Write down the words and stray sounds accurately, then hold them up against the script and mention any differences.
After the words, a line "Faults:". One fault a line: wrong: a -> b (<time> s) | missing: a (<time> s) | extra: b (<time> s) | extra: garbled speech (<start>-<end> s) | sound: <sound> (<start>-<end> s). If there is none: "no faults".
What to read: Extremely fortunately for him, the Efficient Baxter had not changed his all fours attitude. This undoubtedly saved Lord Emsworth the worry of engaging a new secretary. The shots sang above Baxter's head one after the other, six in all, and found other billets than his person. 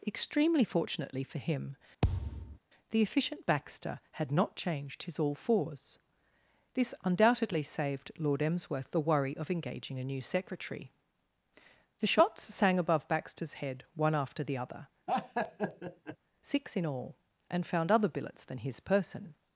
Extremely fortunately for him, the Efficient Baxter had not changed his all fours. This undoubtedly saved Lord Emsworth the worry of engaging a new secretary. The shots sang above Baxter's head one after the other, six in all, and found other billets than his person.
Faults:
sound: thud (2.0-2.6 s)
missing: attitude (6.0 s)
sound: laugh (15.1-16.2 s)